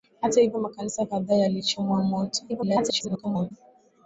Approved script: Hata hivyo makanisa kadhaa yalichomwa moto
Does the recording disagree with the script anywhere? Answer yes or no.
yes